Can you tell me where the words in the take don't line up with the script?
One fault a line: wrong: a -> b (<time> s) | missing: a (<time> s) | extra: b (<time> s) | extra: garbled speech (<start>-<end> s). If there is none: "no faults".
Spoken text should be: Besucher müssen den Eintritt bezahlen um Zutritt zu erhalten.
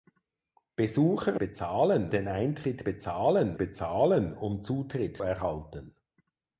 wrong: müssen -> bezahlen (1.4 s)
extra: bezahlen (3.6 s)
missing: zu (5.2 s)